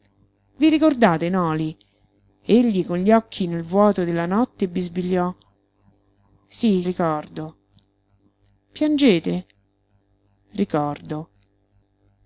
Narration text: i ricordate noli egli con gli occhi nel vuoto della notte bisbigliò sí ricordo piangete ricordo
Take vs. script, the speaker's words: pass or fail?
pass